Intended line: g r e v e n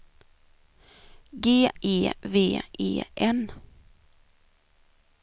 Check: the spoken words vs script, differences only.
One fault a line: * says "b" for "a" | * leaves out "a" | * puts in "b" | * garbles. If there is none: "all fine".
* leaves out "r"